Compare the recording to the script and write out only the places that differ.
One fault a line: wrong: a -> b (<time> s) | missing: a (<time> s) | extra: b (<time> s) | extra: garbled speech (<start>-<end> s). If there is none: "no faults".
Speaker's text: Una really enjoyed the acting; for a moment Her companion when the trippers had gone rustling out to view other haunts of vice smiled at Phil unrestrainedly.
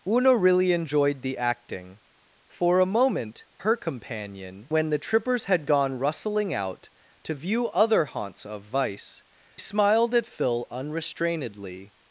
no faults